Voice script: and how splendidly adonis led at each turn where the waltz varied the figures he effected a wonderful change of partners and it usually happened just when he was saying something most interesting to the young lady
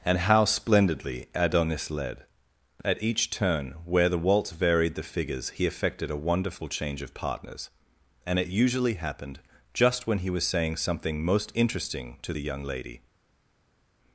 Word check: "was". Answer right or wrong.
right